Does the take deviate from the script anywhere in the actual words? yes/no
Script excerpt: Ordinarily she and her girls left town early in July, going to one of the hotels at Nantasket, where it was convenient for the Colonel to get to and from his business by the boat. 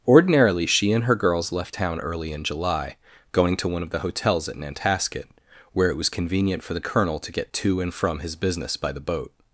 no